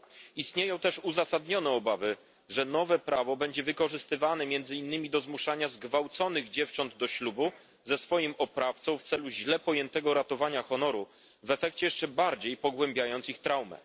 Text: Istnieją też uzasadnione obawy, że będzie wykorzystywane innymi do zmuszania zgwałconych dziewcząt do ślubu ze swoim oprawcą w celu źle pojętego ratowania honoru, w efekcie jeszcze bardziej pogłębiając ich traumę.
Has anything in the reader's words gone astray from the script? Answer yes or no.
yes